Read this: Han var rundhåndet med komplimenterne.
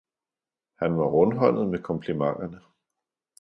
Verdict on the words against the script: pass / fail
pass